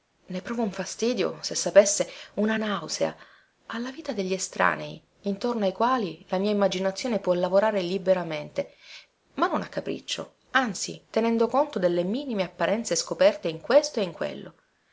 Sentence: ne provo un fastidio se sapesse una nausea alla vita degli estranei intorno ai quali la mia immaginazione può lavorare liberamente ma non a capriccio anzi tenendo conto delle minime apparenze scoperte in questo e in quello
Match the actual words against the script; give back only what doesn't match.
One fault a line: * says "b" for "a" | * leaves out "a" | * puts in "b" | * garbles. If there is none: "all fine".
all fine